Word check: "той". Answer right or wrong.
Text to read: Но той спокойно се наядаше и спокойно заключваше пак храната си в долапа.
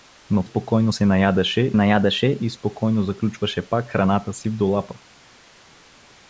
wrong